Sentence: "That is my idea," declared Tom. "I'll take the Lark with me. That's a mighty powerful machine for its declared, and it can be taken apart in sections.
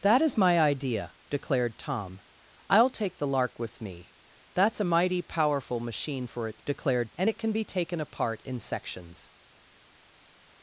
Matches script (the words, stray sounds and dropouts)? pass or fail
pass